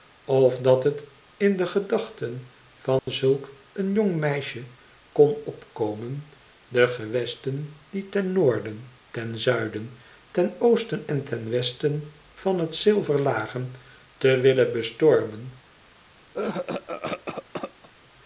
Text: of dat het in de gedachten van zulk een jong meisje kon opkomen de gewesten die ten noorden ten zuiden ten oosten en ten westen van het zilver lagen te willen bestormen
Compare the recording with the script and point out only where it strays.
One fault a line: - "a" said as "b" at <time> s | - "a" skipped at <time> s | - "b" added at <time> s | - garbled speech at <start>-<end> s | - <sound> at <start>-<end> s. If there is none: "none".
- dropout at 3.0-3.1 s
- cough at 16.3-17.9 s